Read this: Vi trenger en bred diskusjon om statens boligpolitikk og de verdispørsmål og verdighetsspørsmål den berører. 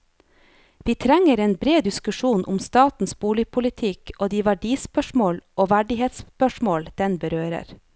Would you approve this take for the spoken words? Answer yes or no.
yes